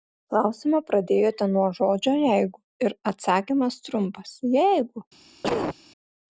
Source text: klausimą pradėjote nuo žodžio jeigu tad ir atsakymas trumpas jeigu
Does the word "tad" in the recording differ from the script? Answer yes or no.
yes